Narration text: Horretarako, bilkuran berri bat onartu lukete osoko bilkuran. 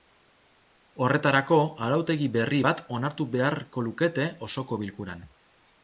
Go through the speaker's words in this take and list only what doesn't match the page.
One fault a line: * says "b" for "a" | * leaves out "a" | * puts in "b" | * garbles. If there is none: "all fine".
* says "arautegi" for "bilkuran"
* puts in "beharko"